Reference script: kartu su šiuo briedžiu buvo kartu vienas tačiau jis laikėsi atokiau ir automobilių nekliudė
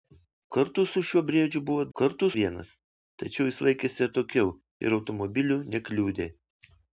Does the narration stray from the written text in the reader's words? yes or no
no